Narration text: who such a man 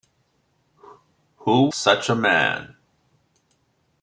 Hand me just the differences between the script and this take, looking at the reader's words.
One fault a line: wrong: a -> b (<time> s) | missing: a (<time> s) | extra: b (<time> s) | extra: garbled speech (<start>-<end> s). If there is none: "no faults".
no faults